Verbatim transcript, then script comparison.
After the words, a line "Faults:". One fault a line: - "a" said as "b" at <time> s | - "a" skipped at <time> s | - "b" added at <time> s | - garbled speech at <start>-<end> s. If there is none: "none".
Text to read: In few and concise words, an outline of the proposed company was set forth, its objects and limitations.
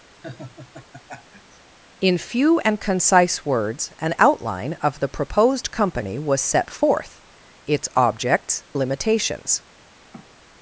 In few and concise words, an outline of the proposed company was set forth, its objects limitations.
Faults:
- "and" skipped at 8.6 s